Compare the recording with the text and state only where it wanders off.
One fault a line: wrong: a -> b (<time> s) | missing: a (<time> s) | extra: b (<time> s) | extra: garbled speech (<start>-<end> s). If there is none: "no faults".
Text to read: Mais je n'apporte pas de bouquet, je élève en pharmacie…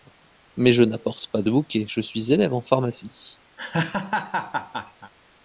extra: suis (2.0 s)